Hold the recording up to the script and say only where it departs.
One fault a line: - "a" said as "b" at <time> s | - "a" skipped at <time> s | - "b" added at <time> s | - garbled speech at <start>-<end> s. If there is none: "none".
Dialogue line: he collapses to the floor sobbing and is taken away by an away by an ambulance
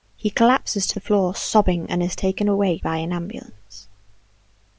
- "away by an" skipped at 3.1 s